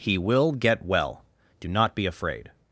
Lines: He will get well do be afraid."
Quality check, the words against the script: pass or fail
fail